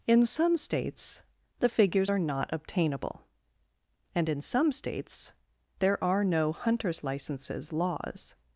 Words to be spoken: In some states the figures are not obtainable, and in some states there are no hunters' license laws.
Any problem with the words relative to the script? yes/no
yes